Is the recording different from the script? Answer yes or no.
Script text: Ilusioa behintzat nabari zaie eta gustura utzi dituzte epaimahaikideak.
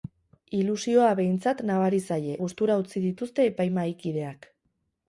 yes